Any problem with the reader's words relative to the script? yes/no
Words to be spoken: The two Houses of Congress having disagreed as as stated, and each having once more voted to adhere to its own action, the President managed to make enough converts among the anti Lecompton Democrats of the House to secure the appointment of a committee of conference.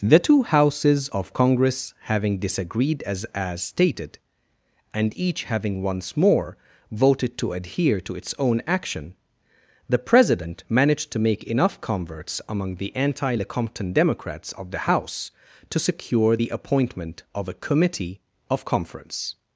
no